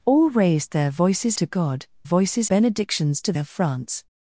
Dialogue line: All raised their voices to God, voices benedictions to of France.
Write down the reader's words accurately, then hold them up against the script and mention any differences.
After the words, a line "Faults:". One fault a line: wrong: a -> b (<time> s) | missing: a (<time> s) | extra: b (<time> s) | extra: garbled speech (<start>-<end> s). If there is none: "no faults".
All raised their voices to God, voices benedictions to of France.
Faults:
no faults